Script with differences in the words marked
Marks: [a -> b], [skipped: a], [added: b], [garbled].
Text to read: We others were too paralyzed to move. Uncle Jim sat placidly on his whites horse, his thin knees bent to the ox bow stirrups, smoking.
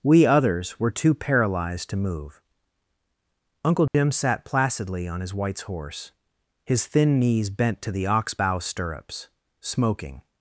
We others were too paralyzed to move. Uncle Jim sat placidly on his whites horse, his thin knees bent to the ox bow stirrups, smoking.